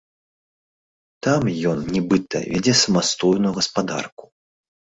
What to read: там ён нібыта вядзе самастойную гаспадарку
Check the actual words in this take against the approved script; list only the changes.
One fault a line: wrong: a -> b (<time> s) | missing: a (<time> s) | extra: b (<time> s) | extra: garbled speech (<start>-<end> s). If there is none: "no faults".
no faults